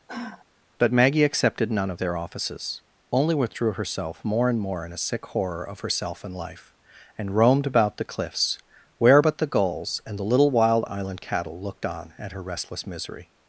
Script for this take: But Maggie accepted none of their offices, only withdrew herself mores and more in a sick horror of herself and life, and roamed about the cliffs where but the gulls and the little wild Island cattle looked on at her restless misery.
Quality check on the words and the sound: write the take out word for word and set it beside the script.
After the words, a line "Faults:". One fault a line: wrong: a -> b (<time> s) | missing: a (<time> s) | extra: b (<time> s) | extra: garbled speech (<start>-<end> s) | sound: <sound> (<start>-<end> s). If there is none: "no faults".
But Maggie accepted none of their offices, only withdrew herself more and more in a sick horror of herself and life, and roamed about the cliffs where but the gulls and the little wild Island cattle looked on at her restless misery.
Faults:
sound: sigh (0.1-0.5 s)
wrong: mores -> more (4.2 s)